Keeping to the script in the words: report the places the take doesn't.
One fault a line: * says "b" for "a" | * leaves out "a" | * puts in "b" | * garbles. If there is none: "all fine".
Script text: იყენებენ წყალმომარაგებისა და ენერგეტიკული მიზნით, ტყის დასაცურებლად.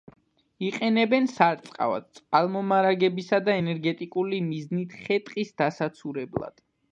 * puts in "სარწყავად"
* puts in "ხე"